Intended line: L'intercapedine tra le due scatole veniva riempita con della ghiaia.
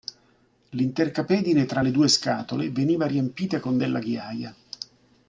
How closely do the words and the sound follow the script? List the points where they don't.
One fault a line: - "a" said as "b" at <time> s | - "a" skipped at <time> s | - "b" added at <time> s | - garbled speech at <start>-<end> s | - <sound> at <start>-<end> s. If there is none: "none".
none